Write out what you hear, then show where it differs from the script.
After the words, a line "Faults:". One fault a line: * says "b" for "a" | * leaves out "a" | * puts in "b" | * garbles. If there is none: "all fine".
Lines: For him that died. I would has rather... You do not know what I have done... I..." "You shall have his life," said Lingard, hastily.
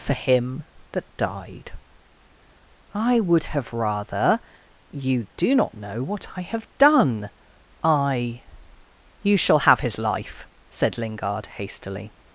For him that died. I would have rather... You do not know what I have done... I..." "You shall have his life," said Lingard, hastily.
Faults:
* says "have" for "has"